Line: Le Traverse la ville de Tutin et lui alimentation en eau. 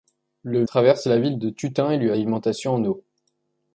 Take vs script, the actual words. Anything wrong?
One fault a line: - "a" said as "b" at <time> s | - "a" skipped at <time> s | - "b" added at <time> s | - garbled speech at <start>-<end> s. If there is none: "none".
none